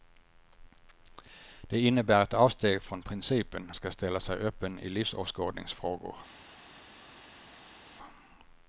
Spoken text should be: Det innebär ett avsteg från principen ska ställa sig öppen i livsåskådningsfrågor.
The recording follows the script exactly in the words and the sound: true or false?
true